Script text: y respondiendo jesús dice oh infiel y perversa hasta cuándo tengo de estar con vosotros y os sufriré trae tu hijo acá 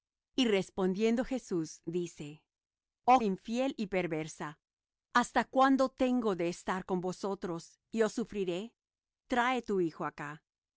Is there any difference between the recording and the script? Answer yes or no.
no